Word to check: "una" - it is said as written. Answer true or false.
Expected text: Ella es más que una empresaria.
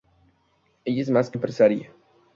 false